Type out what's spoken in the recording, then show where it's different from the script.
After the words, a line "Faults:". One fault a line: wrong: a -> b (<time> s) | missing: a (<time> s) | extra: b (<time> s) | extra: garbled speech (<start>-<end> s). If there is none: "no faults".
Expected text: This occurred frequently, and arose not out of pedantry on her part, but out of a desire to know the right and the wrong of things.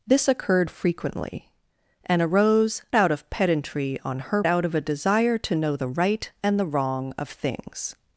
This occurred frequently, and arose out of pedantry on her out of a desire to know the right and the wrong of things.
Faults:
missing: not (2.8 s)
missing: part but (4.4 s)